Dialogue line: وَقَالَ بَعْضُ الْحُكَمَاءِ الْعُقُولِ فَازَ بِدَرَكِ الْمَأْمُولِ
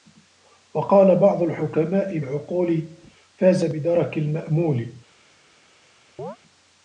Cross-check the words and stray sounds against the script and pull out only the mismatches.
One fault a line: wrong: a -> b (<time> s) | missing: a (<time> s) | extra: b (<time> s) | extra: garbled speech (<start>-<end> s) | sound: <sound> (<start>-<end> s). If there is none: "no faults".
sound: chirp (6.2-6.4 s)